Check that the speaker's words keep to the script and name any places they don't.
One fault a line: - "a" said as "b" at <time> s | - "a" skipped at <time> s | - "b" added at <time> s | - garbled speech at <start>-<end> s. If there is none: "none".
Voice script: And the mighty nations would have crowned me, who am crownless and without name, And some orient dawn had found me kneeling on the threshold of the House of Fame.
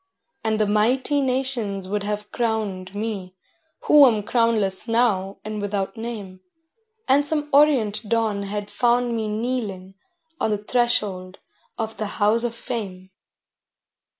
- "now" added at 4.9 s